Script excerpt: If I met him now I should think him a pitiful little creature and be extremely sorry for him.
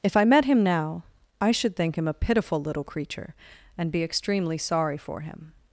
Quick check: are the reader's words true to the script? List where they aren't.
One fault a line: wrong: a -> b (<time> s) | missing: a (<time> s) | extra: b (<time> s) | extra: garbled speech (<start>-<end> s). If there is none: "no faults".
no faults